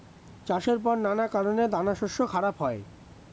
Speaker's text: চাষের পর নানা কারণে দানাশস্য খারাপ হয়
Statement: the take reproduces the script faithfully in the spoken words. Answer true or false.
true